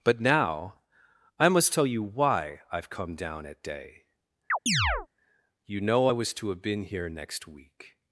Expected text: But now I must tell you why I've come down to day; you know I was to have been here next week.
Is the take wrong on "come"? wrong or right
right